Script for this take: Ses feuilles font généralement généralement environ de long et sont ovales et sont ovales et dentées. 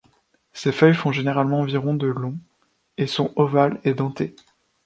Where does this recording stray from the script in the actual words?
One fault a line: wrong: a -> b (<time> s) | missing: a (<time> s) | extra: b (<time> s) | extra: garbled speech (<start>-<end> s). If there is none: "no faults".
missing: généralement (1.6 s)
missing: sont ovales et (3.9 s)